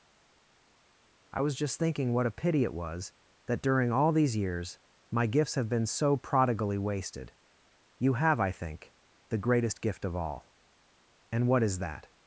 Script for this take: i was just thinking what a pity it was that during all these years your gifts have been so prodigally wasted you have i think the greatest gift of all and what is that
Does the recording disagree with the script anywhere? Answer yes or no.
yes